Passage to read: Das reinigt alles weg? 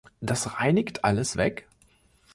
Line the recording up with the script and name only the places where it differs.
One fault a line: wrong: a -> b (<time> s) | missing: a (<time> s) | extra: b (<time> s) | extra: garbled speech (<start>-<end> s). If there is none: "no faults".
no faults